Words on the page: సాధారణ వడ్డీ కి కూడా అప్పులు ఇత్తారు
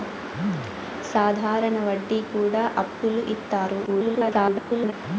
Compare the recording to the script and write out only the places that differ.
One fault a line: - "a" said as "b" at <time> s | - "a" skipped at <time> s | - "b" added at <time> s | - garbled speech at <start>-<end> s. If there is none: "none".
- "కి" skipped at 2.2 s
- garbled speech at 3.9-4.9 s